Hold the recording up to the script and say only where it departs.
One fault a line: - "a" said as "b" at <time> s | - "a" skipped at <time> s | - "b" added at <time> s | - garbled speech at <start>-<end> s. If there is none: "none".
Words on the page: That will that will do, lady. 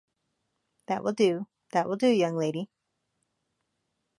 - "do" added at 1.1 s
- "young" added at 2.1 s